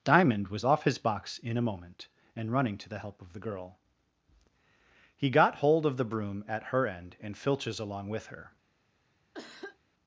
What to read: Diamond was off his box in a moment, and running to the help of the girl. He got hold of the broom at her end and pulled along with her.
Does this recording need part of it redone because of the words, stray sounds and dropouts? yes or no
yes